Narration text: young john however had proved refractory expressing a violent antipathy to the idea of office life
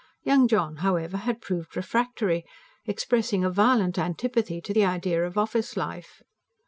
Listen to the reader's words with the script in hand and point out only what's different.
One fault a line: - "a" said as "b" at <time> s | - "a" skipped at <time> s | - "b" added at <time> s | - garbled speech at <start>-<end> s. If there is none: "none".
none